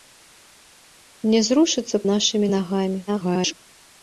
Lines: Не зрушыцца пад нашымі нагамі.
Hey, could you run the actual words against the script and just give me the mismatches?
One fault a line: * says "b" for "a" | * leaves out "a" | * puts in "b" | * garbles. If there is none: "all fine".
* leaves out "пад"
* garbles